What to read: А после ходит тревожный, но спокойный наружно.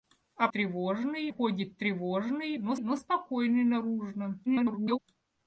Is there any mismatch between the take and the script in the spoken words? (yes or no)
yes